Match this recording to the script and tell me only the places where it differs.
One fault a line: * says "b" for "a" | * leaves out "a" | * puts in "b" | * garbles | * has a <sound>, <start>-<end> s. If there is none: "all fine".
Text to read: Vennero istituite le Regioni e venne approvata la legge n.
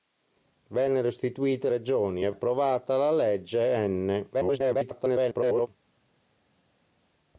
* leaves out "le"
* leaves out "venne"
* garbles